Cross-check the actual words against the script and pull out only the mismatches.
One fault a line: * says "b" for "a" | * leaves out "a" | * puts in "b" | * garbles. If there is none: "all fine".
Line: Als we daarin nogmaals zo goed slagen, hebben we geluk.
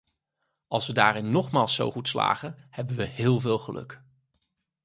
* puts in "heel veel"